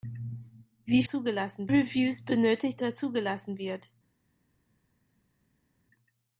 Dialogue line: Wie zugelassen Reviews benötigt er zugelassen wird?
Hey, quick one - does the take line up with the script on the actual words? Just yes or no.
yes